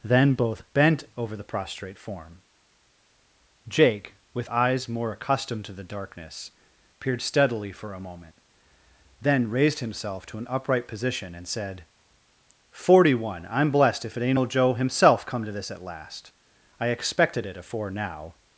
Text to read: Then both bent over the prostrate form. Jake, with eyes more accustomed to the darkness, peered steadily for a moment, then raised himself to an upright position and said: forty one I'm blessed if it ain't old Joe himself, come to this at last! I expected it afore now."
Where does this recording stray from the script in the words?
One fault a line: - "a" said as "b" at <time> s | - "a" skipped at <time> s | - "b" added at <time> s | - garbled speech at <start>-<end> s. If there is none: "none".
none